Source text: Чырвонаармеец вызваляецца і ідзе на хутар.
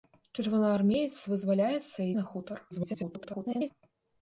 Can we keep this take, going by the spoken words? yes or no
no